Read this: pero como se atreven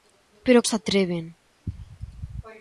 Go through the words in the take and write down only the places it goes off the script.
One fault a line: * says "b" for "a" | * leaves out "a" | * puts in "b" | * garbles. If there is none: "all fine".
* leaves out "como"